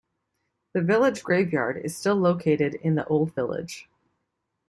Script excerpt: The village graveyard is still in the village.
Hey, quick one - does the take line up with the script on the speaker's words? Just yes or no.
no